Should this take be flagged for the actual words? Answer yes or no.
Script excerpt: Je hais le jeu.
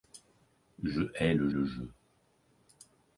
yes